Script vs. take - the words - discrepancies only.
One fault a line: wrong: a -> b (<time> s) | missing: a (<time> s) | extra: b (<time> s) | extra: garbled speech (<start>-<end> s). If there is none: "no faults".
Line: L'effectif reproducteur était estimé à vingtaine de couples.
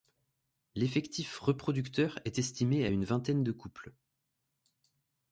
wrong: était -> est (2.2 s)
extra: une (2.9 s)